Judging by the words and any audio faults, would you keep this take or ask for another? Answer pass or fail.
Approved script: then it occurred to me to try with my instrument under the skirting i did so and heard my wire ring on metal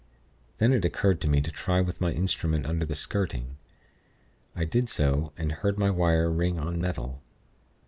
pass